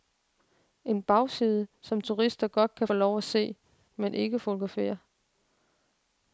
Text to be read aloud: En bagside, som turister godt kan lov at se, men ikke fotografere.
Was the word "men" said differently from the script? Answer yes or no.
no